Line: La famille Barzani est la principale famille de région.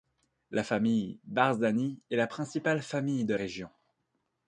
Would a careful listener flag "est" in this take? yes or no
no